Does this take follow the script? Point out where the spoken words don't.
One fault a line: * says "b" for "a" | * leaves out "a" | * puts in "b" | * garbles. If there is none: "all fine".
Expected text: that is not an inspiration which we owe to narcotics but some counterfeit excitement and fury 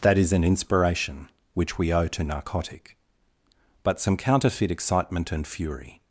* leaves out "not"
* says "narcotic" for "narcotics"